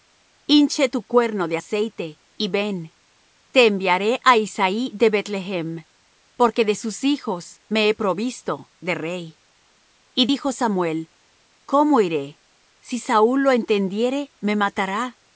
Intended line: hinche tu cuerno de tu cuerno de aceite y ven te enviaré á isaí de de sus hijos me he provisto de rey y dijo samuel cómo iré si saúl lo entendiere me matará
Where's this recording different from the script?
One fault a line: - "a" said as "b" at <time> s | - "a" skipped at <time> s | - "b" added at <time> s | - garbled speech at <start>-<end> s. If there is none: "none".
- "tu cuerno de" skipped at 1.6 s
- "beth lehem porque" added at 5.1 s